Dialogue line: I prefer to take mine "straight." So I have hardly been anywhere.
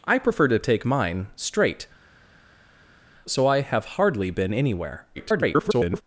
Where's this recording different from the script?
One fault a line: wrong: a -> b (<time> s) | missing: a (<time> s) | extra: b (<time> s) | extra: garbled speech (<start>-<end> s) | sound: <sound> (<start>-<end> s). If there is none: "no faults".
extra: garbled speech (5.1-6.0 s)